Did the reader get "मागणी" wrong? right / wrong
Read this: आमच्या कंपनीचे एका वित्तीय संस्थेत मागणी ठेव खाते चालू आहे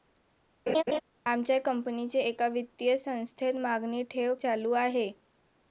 right